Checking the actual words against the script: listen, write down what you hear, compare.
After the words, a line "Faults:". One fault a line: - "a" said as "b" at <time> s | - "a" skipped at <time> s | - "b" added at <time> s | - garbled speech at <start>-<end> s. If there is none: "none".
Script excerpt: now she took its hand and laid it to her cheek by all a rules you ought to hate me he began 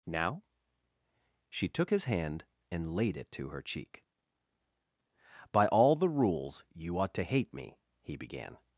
now she took his hand and laid it to her cheek by all the rules you ought to hate me he began
Faults:
- "its" said as "his" at 1.9 s
- "a" said as "the" at 5.9 s